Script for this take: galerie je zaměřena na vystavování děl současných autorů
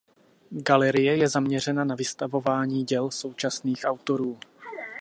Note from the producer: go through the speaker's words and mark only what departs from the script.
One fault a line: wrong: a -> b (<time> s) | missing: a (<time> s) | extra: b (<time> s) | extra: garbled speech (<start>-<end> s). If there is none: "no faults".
no faults